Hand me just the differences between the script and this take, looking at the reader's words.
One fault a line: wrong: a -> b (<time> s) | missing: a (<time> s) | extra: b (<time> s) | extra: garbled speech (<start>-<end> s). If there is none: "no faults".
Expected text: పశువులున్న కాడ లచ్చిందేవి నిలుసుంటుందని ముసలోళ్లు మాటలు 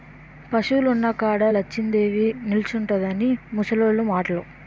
no faults